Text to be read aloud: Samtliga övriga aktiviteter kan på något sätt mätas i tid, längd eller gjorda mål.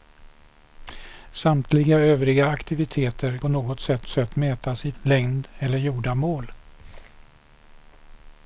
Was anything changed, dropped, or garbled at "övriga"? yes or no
no